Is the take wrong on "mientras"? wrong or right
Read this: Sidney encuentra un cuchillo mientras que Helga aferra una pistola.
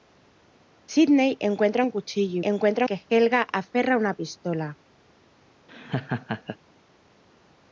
wrong